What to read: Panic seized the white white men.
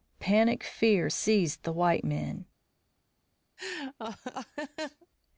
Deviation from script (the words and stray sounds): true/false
true